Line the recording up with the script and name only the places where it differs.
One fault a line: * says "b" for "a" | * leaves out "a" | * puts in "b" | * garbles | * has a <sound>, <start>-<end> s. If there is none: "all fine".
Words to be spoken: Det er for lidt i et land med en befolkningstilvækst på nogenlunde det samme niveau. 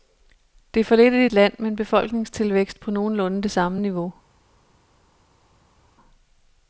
all fine